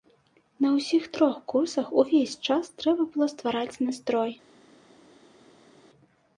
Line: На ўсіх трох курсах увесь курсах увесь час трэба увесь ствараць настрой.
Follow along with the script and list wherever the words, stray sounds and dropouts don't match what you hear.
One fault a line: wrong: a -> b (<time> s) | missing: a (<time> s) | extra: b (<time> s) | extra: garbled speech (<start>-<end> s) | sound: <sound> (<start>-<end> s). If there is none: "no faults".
missing: курсах увесь (2.4 s)
wrong: увесь -> было (3.1 s)